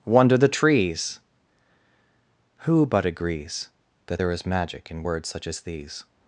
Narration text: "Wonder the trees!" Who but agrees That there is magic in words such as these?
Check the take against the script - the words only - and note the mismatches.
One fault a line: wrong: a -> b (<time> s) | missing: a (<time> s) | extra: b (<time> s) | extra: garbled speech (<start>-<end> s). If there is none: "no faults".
no faults